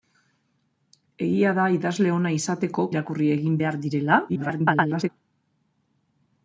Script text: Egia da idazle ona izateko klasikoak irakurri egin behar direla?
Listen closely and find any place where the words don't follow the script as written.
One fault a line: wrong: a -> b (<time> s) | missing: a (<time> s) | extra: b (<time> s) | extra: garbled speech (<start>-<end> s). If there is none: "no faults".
missing: klasikoak (2.9 s)
extra: garbled speech (4.3-5.1 s)